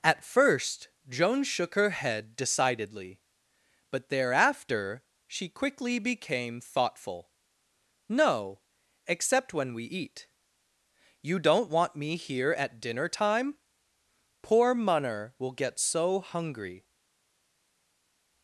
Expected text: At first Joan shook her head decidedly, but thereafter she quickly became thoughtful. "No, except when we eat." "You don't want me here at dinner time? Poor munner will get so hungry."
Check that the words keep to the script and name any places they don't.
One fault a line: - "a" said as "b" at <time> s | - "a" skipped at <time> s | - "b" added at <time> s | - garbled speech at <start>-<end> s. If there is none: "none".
none